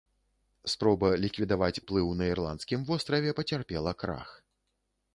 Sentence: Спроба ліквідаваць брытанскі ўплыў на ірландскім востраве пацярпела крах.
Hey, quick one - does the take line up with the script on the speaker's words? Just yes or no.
no